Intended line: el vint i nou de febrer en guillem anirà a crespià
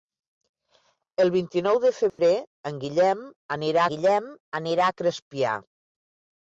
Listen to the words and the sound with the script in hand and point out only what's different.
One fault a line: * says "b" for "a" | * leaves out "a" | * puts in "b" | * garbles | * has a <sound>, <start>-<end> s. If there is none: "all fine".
* has a dropout, 2.1-2.2 s
* puts in "guillem anirà"